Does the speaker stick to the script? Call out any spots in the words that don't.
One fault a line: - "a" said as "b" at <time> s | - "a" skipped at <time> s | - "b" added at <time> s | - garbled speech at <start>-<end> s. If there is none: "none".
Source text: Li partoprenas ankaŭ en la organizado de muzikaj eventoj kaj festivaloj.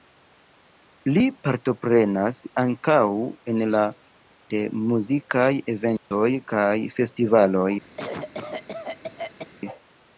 - "organizado" skipped at 3.8 s